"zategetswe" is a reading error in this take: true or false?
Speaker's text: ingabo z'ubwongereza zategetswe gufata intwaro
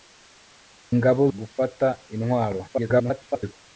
true